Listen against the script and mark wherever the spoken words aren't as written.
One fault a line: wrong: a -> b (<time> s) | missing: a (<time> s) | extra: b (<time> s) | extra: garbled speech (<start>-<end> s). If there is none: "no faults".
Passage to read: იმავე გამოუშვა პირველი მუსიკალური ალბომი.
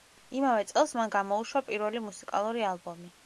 extra: წელს მან (0.7 s)